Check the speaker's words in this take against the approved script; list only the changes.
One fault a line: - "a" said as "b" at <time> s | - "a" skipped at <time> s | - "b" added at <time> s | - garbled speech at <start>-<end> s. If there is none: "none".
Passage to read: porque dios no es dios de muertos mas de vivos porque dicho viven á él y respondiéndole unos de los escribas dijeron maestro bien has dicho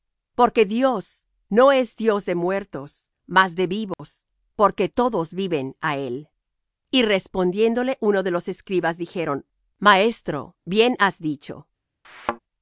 - "dicho" said as "todos" at 4.9 s